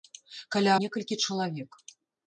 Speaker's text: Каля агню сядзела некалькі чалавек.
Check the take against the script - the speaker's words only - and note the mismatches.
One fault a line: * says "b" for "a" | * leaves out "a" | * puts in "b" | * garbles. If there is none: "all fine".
* leaves out "агню сядзела"